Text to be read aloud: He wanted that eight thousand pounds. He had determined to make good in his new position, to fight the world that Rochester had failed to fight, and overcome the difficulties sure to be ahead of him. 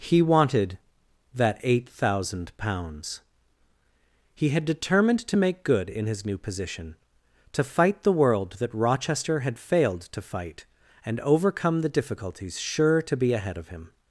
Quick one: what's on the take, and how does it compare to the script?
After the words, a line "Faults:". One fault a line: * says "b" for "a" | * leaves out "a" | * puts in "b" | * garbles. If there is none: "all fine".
He wanted that eight thousand pounds. He had determined to make good in his new position, to fight the world that Rochester had failed to fight, and overcome the difficulties sure to be ahead of him.
Faults:
all fine